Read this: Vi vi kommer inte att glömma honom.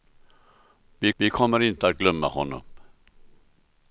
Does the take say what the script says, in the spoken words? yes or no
yes